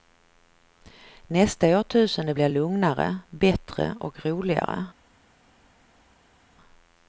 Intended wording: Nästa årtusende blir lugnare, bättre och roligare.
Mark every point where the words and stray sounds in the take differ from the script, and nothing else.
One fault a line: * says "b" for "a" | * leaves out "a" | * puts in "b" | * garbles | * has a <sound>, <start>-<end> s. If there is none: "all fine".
all fine